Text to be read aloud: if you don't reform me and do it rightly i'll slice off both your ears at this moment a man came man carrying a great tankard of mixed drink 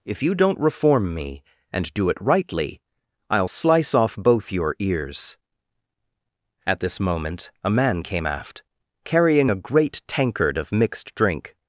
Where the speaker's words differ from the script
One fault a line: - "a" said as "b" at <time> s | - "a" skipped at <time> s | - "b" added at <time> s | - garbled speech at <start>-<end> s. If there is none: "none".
- "man" said as "aft" at 8.3 s